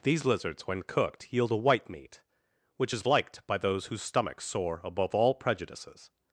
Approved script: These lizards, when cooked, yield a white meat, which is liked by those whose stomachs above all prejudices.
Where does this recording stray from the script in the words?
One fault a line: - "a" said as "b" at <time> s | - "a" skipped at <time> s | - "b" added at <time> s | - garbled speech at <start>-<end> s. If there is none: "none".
- "soar" added at 4.4 s